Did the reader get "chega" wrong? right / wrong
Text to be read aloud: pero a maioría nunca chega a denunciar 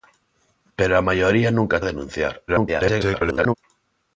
wrong